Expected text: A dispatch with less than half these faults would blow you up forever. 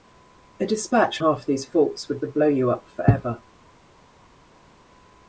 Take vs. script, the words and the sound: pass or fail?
fail